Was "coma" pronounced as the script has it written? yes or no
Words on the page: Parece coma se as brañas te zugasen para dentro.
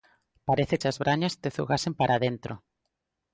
no